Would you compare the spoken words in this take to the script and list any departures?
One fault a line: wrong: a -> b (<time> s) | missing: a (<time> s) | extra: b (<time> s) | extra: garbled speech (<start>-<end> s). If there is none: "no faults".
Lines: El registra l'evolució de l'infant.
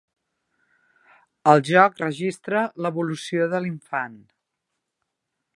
extra: joc (1.7 s)